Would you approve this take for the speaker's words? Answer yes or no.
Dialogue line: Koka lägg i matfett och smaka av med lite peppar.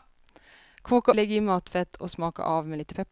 yes